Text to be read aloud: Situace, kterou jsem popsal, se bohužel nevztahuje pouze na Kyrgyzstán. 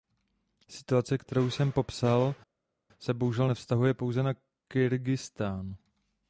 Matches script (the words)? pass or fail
pass